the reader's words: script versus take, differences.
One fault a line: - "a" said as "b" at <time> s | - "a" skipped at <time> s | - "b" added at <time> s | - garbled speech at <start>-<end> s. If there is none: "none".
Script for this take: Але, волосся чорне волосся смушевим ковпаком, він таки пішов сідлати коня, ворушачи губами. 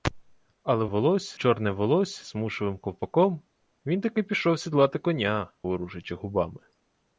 none